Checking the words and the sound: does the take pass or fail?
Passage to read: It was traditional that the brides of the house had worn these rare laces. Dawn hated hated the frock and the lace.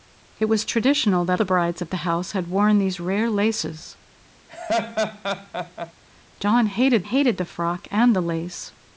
fail